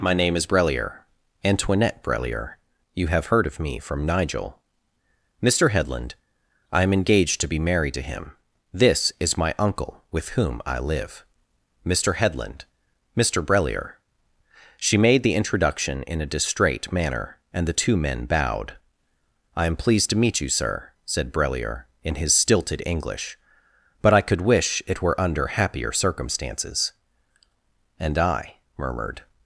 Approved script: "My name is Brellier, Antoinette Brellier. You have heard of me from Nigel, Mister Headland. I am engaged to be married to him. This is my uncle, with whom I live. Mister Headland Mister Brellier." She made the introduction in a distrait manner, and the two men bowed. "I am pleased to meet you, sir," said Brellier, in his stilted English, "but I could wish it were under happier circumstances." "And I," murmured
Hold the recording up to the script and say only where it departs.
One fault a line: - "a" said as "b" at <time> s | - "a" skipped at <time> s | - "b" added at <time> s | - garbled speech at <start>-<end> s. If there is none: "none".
none